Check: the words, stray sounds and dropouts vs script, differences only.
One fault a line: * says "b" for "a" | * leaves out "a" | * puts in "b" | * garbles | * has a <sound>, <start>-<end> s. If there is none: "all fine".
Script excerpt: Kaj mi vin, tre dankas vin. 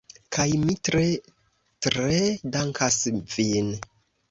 * says "tre" for "vin"